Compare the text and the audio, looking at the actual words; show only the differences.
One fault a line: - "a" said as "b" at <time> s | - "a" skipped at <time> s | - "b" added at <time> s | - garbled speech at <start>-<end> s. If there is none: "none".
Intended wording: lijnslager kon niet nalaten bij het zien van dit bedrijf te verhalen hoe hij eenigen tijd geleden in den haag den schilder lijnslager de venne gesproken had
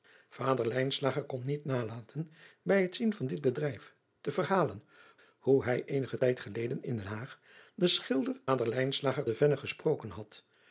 none